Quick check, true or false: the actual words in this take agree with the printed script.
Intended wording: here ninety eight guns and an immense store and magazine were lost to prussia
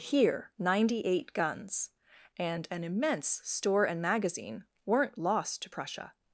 false